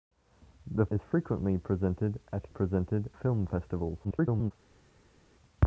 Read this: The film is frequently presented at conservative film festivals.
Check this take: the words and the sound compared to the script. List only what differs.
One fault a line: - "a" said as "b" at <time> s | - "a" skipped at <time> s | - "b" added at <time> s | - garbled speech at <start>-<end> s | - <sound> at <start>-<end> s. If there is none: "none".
- "film" skipped at 0.8 s
- "conservative" said as "presented" at 2.5 s
- garbled speech at 4.0-4.5 s